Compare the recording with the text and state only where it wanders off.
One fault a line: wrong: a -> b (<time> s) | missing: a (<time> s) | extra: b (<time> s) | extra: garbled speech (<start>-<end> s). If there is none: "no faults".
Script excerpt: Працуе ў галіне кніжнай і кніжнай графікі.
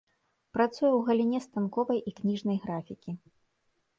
wrong: кніжнай -> станковай (1.5 s)